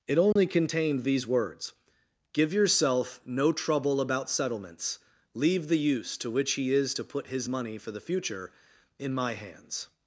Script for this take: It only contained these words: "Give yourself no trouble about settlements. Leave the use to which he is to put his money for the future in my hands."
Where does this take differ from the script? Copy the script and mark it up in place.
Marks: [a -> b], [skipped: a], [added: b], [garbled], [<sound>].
It only [dropout] contained these words: "Give yourself no trouble about settlements. Leave the use to which he is to put his money for the future in my hands."